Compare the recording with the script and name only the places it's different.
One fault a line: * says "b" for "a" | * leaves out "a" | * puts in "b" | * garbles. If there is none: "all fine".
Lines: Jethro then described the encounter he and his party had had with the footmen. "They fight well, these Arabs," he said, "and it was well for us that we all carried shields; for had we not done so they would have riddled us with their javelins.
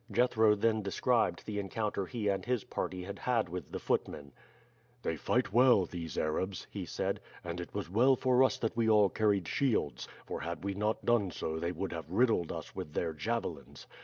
all fine